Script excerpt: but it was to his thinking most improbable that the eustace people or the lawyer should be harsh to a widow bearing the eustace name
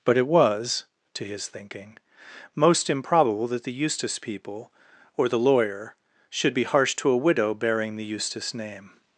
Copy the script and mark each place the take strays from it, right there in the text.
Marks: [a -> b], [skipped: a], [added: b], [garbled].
but it was to his thinking most improbable that the eustace people or the lawyer should be harsh to a widow bearing the eustace name